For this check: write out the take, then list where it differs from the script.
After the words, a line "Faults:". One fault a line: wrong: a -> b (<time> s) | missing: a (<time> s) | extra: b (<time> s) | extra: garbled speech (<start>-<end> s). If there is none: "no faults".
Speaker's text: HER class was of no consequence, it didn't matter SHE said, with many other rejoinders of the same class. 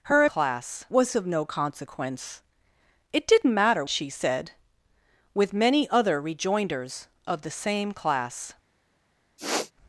HER class was of no consequence, it didn't matter SHE said, with many other rejoinders of the same class.
Faults:
no faults